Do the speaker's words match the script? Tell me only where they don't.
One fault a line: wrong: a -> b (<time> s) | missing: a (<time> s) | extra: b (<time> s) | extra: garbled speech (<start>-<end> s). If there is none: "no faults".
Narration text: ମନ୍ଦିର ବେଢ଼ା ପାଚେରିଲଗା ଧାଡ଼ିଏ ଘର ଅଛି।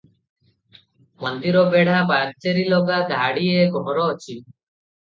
no faults